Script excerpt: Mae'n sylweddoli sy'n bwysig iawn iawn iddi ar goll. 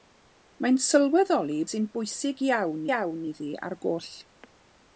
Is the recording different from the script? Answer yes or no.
no